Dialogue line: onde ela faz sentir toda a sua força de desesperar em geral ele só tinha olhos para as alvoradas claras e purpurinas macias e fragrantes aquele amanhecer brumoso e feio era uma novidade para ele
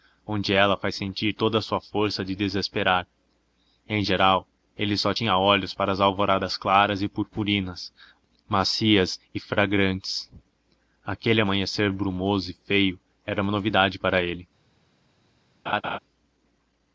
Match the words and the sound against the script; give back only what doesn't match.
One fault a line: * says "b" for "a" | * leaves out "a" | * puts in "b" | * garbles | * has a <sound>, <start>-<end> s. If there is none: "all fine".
* has a laugh, 15.7-16.0 s